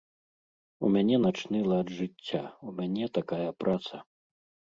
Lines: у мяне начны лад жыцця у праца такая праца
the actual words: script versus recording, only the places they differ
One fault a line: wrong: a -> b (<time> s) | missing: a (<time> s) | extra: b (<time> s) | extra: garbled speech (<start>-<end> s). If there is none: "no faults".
wrong: праца -> мяне (2.8 s)